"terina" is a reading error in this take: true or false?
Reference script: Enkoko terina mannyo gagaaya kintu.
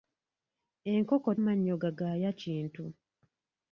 true